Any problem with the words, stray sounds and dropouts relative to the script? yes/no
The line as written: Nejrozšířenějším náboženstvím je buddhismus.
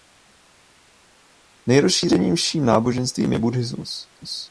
no